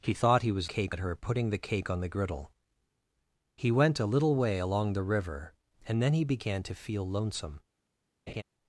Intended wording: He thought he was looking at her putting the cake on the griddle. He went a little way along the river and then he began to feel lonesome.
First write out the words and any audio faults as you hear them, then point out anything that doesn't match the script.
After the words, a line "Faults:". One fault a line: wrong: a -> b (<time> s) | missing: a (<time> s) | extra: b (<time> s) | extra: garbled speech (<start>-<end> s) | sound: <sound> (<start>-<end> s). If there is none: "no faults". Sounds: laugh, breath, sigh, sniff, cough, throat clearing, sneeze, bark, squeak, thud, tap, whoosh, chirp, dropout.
He thought he was cake at her putting the cake on the griddle. He went a little way along the river and then he began to feel lonesome.
Faults:
wrong: looking -> cake (0.7 s)
sound: laugh (8.3-8.4 s)